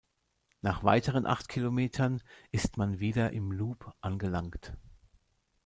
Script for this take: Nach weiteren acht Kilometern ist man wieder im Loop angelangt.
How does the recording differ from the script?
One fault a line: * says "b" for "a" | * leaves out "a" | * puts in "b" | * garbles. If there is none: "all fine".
all fine